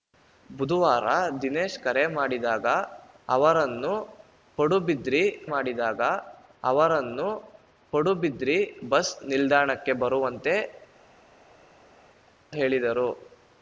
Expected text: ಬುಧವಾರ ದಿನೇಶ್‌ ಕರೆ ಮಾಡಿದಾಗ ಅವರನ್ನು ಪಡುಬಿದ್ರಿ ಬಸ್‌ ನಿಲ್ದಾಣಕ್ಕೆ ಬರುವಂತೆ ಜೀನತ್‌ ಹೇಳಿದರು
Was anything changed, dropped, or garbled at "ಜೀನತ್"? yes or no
yes